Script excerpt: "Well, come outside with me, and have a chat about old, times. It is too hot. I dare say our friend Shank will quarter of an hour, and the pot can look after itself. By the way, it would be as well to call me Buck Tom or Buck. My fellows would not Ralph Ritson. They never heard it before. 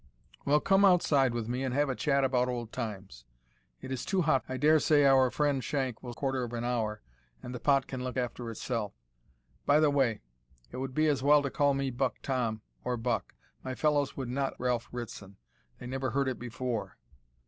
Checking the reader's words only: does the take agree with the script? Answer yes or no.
yes